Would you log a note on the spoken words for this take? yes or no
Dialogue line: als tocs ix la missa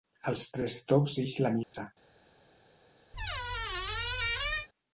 yes